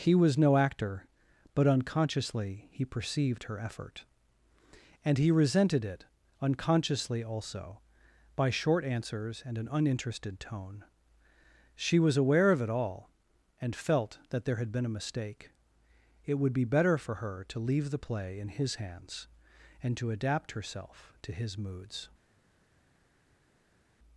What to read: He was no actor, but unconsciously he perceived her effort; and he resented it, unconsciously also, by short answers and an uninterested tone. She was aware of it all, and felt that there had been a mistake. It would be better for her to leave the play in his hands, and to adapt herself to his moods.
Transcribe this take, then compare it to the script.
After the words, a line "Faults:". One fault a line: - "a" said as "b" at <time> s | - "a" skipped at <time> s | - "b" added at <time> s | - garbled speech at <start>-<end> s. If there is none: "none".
He was no actor, but unconsciously he perceived her effort; and he resented it, unconsciously also, by short answers and an uninterested tone. She was aware of it all, and felt that there had been a mistake. It would be better for her to leave the play in his hands, and to adapt herself to his moods.
Faults:
none